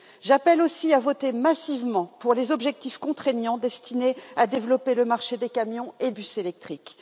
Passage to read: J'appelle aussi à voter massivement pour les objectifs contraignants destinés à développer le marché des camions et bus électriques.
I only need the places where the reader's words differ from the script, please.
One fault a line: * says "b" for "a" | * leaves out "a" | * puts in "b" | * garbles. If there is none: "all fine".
all fine